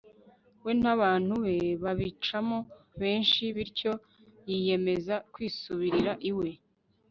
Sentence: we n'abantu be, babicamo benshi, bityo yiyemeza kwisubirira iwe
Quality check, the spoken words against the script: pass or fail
pass